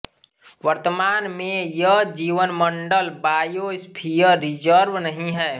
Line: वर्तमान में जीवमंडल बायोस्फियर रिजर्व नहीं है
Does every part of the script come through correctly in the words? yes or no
no